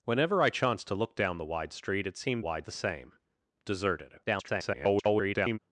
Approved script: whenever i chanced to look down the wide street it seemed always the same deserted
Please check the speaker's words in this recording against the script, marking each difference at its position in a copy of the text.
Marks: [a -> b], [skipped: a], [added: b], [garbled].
whenever i chanced to look down the wide street it seemed [always -> wide] the same deserted [garbled]